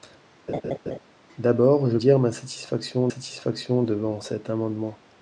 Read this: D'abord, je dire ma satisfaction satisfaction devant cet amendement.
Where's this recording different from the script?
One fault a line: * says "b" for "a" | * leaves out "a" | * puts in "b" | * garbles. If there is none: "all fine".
all fine